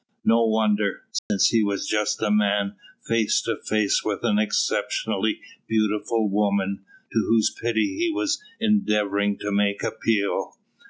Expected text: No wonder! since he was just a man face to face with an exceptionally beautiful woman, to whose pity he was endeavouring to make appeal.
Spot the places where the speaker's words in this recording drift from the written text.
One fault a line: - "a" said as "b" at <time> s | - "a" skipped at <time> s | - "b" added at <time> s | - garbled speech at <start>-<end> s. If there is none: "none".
none